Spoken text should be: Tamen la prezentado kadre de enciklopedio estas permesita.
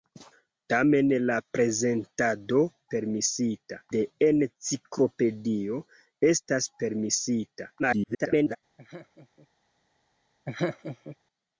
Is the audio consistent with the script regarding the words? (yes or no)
no